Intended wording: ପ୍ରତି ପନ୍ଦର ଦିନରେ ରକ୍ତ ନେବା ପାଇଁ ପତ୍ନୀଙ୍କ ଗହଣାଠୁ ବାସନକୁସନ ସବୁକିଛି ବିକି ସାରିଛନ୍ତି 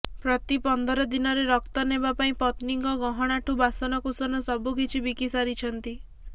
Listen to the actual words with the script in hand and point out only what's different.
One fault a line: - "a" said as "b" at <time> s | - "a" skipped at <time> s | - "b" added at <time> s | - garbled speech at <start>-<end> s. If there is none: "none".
none